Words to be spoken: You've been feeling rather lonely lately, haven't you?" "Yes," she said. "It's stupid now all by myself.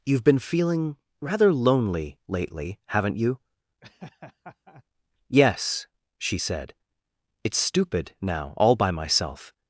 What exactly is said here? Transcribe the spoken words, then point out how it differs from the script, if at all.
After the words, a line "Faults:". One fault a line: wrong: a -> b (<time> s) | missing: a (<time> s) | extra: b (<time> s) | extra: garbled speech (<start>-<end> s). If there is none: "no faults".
You've been feeling rather lonely lately, haven't you?" "Yes," she said. "It's stupid now all by myself.
Faults:
no faults